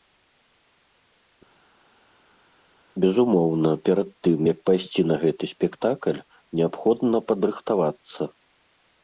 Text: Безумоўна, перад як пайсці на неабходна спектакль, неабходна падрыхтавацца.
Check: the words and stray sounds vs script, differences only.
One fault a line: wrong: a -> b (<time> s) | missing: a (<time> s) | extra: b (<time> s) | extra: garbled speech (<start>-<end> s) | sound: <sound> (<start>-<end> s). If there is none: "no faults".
extra: тым (4.3 s)
wrong: неабходна -> гэты (5.2 s)